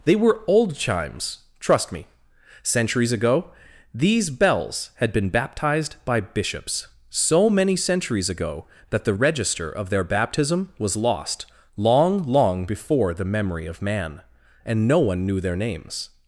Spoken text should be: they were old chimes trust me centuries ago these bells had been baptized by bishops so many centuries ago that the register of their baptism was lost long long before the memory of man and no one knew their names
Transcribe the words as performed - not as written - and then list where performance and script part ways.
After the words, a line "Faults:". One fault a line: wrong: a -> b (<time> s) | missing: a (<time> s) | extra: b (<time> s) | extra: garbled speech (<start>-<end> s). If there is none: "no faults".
they were old chimes trust me centuries ago these bells had been baptized by bishops so many centuries ago that the register of their baptism was lost long long before the memory of man and no one knew their names
Faults:
no faults